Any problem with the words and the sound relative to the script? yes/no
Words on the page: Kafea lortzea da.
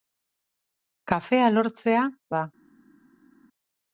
no